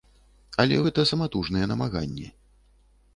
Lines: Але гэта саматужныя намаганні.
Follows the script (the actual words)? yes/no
yes